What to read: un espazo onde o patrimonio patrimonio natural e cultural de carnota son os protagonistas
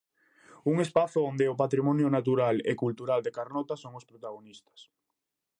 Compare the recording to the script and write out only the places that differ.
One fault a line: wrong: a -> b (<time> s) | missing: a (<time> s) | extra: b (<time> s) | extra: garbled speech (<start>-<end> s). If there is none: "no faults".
missing: patrimonio (2.1 s)